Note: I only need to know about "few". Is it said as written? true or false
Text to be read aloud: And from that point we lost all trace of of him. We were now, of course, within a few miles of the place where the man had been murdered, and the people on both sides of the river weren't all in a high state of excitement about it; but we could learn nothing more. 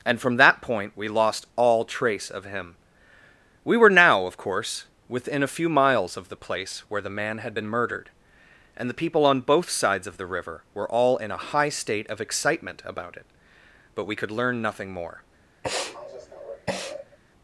true